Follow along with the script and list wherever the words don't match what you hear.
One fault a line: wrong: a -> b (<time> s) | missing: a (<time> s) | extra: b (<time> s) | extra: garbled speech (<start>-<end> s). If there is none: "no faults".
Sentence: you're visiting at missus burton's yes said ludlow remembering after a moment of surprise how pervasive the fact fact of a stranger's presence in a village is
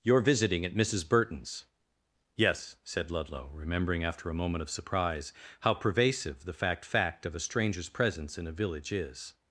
no faults